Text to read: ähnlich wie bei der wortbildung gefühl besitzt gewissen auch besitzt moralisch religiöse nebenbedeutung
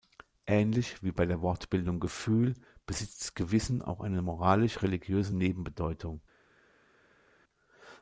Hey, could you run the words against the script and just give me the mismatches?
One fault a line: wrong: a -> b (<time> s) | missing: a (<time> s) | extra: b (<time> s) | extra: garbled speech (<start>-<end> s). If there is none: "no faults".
wrong: besitzt -> eine (4.0 s)